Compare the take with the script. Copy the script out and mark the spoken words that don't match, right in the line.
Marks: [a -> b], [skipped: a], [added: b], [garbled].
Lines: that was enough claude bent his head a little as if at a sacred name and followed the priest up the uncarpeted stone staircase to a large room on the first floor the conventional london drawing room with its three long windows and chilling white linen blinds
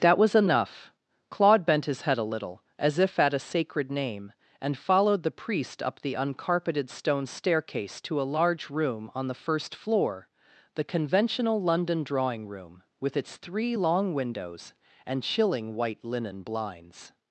that was enough claude bent his head a little as if at a sacred name and followed the priest up the uncarpeted stone staircase to a large room on the first floor the conventional london drawing room with its three long windows and chilling white linen blinds